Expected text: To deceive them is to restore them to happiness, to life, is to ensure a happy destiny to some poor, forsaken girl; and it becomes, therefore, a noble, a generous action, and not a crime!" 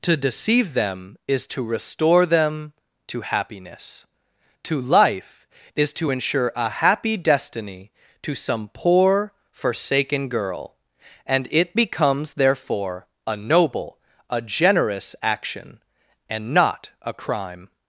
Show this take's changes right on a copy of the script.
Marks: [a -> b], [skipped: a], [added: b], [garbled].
To deceive them is to restore them to happiness, to life, is to ensure a happy destiny to some poor, forsaken girl; and it becomes, therefore, a noble, a generous action, and not a crime!"